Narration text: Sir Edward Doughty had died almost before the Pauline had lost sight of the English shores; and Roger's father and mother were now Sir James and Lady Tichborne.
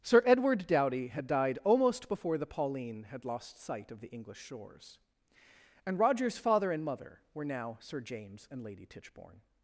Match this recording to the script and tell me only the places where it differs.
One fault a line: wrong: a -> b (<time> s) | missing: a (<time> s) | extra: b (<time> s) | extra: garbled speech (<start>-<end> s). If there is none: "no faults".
no faults